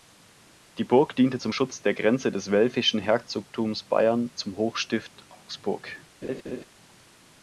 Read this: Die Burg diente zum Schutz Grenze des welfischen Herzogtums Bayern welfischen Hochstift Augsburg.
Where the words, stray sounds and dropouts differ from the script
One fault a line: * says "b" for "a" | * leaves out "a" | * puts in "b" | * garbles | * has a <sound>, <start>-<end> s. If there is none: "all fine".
* puts in "der"
* says "zum" for "welfischen"
* has a laugh, 6.2-6.6 s